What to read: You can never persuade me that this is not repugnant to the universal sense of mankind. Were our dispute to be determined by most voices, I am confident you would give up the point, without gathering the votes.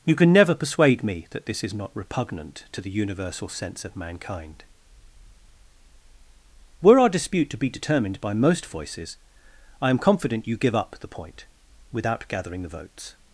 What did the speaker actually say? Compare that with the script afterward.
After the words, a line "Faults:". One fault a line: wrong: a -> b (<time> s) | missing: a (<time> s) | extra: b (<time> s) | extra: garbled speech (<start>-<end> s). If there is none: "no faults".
You can never persuade me that this is not repugnant to the universal sense of mankind. Were our dispute to be determined by most voices, I am confident you give up the point, without gathering the votes.
Faults:
missing: would (10.6 s)